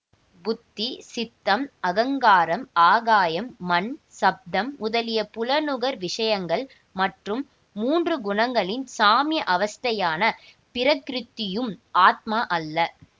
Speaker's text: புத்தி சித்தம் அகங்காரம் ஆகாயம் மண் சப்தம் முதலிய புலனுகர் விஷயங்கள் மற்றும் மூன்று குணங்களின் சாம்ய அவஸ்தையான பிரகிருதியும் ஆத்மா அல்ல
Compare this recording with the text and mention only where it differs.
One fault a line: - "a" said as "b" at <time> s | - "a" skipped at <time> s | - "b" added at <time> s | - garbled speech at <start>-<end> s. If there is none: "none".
none